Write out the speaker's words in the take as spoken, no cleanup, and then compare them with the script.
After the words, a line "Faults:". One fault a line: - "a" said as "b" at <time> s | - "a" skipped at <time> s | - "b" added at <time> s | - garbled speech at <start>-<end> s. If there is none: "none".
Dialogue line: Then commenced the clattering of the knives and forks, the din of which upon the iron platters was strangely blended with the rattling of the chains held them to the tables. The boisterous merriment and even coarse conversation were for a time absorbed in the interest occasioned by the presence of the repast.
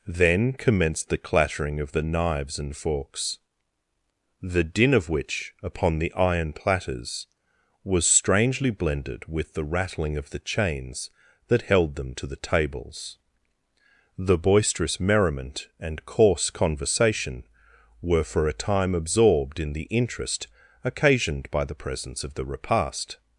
Then commenced the clattering of the knives and forks, the din of which upon the iron platters was strangely blended with the rattling of the chains that held them to the tables. The boisterous merriment and coarse conversation were for a time absorbed in the interest occasioned by the presence of the repast.
Faults:
- "that" added at 11.5 s
- "even" skipped at 16.1 s